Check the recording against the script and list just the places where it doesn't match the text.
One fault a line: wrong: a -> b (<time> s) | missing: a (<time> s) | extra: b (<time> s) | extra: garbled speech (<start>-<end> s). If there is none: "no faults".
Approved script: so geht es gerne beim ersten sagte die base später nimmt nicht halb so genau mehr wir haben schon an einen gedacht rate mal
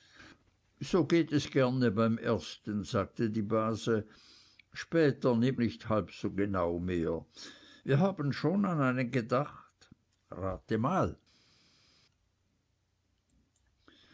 no faults